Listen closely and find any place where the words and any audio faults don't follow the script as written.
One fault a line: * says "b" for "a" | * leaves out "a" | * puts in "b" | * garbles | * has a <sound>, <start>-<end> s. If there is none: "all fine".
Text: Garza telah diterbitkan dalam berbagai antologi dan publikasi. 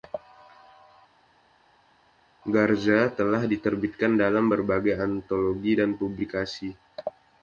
all fine